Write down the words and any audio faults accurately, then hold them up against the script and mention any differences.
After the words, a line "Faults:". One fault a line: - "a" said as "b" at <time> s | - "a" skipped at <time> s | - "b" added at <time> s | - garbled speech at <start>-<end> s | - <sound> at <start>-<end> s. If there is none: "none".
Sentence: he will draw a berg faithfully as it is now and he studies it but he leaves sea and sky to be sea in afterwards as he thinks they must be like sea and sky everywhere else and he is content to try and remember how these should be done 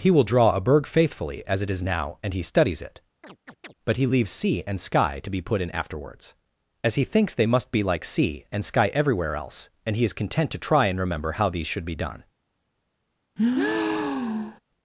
he will draw a berg faithfully as it is now and he studies it but he leaves sea and sky to be put in afterwards as he thinks they must be like sea and sky everywhere else and he is content to try and remember how these should be done
Faults:
- chirp at 3.2-3.7 s
- "sea" said as "put" at 5.4 s
- breath at 13.4-14.6 s